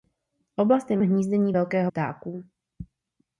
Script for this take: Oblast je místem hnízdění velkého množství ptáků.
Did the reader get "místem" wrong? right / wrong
wrong